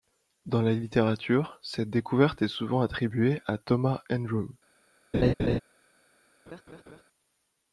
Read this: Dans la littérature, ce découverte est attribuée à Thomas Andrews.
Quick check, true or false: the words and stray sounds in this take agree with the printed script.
false